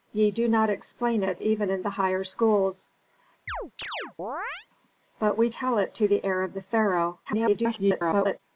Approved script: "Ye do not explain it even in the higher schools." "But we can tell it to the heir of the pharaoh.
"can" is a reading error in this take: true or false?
true